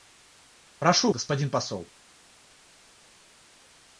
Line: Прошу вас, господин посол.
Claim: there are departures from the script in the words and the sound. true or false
true